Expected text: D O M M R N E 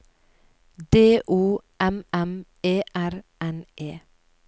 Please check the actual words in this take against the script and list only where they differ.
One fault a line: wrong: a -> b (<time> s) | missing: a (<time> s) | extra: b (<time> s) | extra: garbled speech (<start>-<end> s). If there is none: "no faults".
extra: E (2.6 s)